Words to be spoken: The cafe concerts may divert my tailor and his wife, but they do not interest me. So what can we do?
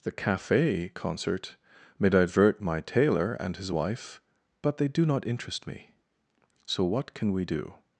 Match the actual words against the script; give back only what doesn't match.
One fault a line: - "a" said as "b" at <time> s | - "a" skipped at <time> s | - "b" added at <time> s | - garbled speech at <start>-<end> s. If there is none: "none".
- "concerts" said as "concert" at 0.9 s